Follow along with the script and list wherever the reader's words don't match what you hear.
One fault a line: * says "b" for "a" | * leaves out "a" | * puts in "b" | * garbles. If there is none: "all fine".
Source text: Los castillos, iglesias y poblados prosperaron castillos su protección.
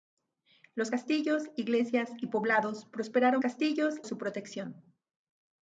all fine